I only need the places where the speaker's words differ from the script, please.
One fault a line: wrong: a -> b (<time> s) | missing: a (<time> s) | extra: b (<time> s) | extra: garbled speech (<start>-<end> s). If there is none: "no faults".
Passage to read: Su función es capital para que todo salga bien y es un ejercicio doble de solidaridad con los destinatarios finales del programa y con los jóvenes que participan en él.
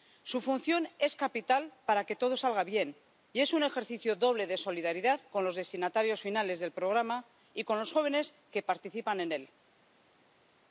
no faults